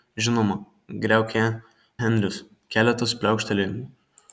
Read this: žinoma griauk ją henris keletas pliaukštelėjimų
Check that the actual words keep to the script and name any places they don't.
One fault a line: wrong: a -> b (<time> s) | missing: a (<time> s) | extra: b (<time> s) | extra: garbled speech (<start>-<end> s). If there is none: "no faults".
no faults